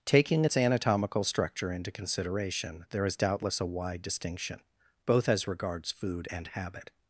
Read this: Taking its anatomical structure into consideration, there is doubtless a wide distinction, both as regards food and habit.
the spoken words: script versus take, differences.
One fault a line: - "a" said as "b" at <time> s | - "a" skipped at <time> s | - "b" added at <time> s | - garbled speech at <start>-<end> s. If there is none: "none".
none